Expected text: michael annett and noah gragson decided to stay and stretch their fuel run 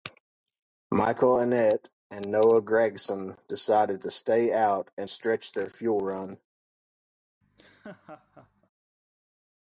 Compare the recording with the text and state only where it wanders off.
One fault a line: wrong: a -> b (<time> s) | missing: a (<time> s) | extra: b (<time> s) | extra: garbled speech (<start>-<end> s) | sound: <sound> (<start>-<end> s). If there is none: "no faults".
extra: out (4.5 s)
sound: laugh (7.4-8.7 s)